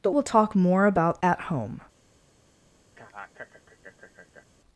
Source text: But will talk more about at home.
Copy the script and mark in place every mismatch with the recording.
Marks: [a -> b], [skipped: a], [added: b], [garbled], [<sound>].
But will talk more about at home. [laugh]